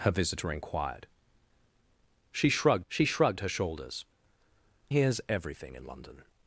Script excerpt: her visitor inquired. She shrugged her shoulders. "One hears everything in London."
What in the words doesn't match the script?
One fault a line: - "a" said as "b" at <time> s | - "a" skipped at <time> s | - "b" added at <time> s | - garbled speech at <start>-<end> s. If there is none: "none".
- "she shrugged" added at 2.9 s
- "One" skipped at 4.1 s